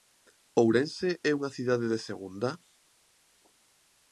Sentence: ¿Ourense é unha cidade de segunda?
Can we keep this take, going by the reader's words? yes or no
yes